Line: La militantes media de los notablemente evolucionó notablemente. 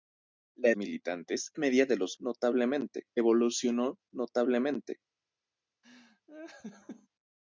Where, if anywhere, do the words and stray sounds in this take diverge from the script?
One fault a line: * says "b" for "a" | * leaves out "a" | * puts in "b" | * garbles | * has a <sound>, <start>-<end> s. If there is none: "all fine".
* has a laugh, 5.8-7.1 s